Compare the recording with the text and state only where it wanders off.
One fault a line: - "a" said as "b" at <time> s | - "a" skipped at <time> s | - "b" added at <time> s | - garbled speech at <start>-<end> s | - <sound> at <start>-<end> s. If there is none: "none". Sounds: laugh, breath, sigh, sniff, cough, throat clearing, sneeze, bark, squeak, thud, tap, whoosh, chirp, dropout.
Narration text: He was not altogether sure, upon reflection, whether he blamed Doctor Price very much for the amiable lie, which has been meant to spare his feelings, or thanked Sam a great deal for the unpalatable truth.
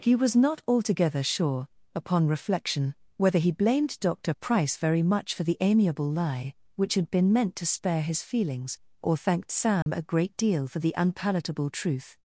- "has" said as "had" at 6.9 s
- dropout at 9.8-9.9 s